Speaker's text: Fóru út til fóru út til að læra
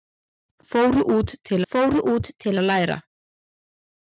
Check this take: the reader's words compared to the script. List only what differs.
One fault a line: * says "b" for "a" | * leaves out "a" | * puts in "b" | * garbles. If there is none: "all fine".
all fine